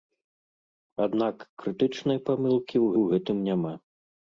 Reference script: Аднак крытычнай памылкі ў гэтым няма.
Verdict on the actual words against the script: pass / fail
fail